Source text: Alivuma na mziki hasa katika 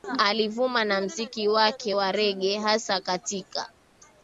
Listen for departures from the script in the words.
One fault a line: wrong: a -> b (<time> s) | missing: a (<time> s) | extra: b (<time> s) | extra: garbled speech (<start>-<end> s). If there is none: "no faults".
extra: wake wa Rege (1.5 s)